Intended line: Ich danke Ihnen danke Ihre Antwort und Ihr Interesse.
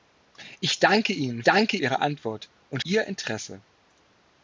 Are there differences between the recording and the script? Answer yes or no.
no